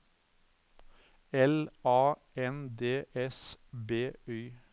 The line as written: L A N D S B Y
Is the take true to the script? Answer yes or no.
yes